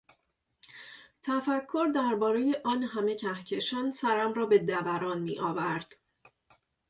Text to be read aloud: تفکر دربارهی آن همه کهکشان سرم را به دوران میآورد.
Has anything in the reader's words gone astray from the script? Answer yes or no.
no